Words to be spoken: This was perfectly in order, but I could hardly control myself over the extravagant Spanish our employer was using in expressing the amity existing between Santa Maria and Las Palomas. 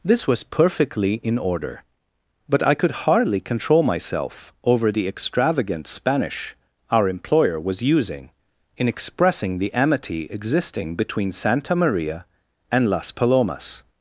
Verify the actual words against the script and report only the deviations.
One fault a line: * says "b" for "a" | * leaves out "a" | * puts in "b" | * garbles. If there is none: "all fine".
all fine